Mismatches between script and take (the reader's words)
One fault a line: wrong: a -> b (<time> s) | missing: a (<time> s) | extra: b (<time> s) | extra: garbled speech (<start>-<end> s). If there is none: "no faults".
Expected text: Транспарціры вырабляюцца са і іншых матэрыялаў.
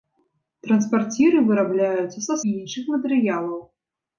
no faults